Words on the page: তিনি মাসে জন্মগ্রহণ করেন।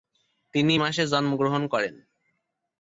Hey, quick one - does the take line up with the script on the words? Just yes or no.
yes